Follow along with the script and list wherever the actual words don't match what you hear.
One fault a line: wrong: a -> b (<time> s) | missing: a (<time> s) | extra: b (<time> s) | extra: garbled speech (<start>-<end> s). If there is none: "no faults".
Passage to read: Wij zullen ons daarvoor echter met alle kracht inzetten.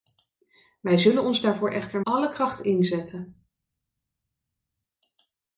missing: met (2.0 s)